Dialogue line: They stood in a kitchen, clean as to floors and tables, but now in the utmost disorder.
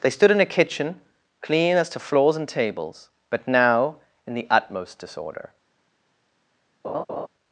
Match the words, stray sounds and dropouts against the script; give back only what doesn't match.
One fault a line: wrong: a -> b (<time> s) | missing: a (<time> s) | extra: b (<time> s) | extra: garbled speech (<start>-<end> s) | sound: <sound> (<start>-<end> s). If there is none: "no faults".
sound: laugh (6.8-7.3 s)